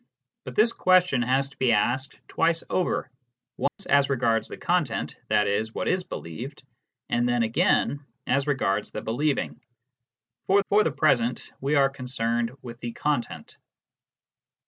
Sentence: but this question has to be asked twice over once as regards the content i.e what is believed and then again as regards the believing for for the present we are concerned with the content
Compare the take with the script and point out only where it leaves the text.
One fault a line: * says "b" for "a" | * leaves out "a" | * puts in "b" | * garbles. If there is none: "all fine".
all fine